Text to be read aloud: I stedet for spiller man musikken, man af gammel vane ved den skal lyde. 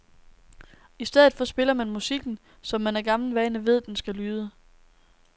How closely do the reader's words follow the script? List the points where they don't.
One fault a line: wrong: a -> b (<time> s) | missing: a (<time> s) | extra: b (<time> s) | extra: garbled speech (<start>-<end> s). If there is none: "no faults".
extra: som (2.6 s)